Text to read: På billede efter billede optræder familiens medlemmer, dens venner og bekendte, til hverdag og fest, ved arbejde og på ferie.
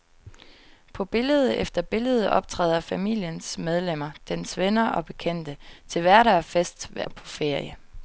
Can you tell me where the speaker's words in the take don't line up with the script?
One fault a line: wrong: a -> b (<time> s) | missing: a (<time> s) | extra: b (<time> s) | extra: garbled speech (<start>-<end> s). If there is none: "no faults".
missing: arbejde (7.0 s)